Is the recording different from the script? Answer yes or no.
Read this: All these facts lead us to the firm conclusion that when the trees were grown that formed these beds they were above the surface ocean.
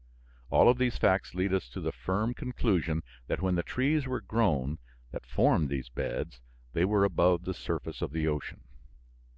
yes